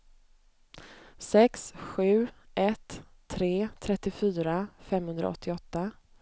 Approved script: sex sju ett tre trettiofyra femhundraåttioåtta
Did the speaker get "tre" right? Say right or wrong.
right